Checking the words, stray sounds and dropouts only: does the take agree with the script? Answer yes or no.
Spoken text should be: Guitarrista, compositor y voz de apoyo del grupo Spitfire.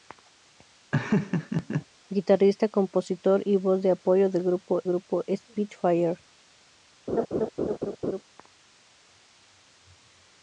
no